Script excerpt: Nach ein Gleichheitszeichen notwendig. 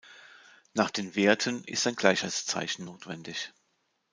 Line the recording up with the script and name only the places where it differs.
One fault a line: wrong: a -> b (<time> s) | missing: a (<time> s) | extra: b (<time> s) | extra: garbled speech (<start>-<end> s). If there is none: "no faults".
extra: den Werten ist (0.9 s)